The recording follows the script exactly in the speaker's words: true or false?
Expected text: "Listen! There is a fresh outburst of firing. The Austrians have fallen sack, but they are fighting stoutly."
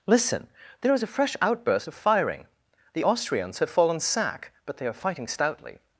true